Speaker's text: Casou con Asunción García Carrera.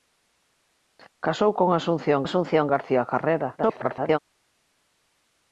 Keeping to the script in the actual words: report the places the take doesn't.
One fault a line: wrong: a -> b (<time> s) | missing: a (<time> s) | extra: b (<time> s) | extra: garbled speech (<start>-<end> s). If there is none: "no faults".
extra: Asunción (2.3 s)
extra: garbled speech (3.6-4.2 s)